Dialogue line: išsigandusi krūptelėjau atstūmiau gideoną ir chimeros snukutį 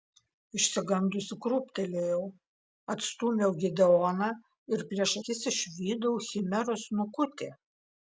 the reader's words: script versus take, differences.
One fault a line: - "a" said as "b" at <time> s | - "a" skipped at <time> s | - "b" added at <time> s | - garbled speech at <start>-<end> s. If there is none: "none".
- "prieš akis išvydau" added at 4.9 s